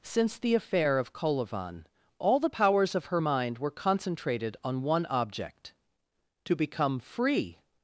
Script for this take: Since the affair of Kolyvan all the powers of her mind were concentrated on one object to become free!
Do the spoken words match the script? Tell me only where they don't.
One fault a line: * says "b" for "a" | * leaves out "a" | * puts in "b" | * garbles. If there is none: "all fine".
all fine